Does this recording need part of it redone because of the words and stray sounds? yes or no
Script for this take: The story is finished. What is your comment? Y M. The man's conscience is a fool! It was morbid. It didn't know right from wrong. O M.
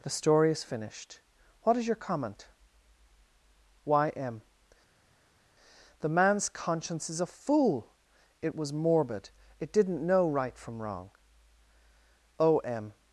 no